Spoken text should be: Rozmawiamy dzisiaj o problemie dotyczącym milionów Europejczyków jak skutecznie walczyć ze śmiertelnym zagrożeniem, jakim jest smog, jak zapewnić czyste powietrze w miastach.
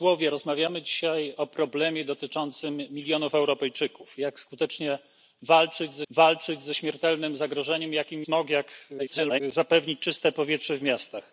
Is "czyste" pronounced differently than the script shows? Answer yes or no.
no